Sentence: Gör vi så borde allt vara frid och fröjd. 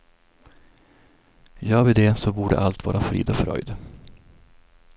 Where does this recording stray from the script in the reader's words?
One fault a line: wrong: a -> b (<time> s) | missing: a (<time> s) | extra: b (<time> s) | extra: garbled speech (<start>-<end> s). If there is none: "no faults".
extra: det (1.9 s)